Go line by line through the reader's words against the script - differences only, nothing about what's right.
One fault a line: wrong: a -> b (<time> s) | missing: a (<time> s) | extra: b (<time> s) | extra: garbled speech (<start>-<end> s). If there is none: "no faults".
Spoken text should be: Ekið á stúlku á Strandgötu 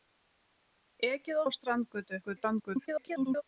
missing: stúlku (1.4 s)
extra: garbled speech (2.2-3.4 s)